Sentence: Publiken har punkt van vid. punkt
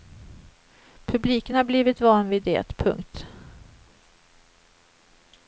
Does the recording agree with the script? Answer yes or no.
no